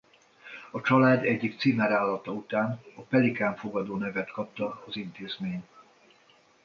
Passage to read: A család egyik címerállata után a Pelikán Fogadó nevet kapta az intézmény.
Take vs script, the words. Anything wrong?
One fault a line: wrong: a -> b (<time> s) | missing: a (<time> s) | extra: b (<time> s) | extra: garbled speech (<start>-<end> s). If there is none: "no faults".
no faults